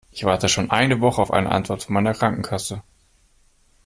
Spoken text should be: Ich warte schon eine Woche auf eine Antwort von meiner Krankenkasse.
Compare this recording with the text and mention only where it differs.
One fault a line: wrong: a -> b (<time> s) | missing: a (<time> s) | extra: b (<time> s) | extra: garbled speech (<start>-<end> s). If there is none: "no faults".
no faults